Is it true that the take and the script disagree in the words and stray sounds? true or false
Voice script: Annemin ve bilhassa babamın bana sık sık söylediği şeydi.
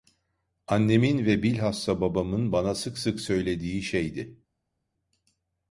false